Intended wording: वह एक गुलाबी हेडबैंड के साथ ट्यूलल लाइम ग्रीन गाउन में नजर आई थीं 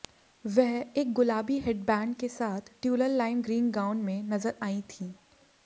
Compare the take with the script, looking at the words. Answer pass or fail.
pass